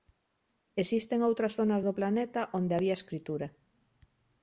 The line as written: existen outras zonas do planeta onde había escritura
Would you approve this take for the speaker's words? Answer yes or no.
yes